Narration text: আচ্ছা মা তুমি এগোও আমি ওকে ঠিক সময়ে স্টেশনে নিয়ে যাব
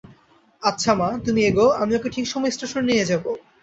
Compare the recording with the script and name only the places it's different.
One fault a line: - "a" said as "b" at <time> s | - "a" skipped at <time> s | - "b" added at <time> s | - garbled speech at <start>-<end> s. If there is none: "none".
none